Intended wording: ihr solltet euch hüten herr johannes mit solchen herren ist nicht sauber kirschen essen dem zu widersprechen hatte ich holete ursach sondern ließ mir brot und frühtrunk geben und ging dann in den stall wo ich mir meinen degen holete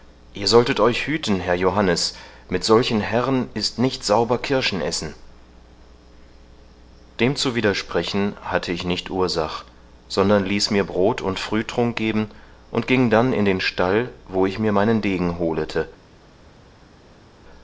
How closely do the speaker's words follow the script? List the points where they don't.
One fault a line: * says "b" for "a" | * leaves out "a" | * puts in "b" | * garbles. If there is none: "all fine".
* says "nicht" for "holete"